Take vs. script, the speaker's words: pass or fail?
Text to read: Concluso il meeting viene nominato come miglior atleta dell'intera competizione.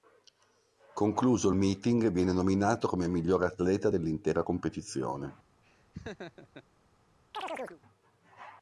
pass